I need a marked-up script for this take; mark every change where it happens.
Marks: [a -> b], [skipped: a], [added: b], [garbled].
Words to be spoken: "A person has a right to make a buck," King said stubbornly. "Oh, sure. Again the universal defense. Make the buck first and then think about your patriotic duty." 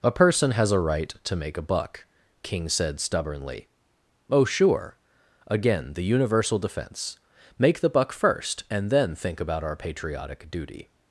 "A person has a right to make a buck," King said stubbornly. "Oh, sure. Again the universal defense. Make the buck first and then think about [your -> our] patriotic duty."